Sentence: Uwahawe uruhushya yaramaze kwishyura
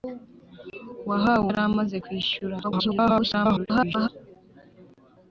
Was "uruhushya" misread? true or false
true